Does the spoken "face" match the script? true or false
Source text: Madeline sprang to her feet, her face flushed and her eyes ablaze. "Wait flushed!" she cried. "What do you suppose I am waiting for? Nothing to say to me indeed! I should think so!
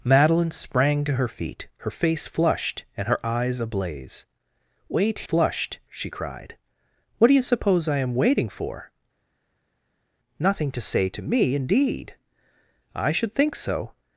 true